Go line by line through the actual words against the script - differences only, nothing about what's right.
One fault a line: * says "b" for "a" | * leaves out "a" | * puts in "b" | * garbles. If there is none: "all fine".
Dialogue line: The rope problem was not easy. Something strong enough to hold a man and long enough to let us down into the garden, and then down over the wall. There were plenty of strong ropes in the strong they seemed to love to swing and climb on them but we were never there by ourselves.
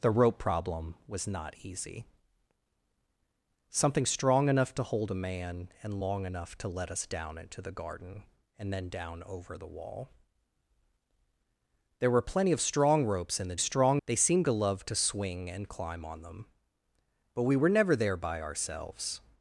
all fine